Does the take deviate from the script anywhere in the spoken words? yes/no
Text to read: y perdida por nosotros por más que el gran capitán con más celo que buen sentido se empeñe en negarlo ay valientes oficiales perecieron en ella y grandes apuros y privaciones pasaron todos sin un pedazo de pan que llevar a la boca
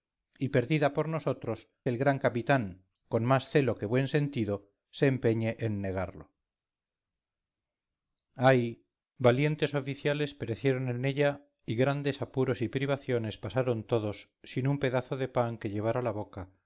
yes